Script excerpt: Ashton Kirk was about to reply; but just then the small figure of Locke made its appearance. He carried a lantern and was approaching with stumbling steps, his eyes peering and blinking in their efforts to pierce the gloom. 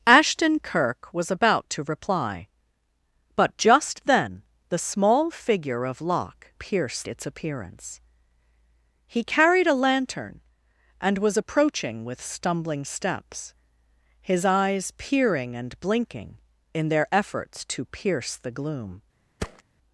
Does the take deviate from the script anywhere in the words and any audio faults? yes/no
yes